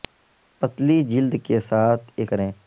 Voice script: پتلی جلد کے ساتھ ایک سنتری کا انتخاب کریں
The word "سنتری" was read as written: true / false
false